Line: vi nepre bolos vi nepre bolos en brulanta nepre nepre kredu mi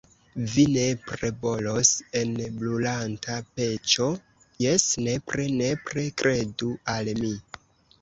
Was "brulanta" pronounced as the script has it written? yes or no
no